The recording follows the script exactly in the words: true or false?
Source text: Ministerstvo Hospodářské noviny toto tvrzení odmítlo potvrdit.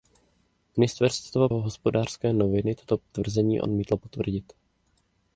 true